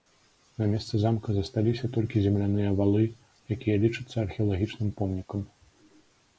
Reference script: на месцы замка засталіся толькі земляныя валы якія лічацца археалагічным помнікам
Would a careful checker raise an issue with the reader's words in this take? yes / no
no